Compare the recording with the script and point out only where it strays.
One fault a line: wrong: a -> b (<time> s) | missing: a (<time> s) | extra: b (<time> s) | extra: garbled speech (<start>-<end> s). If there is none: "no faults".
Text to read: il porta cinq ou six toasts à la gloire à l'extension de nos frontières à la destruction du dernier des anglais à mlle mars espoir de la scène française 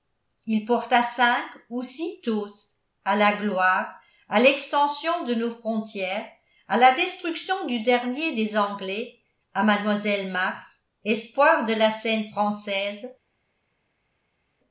no faults